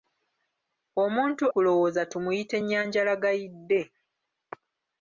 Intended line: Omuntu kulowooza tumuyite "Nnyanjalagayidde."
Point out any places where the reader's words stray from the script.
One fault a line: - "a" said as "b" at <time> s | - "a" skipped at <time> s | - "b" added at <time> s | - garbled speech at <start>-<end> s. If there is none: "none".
none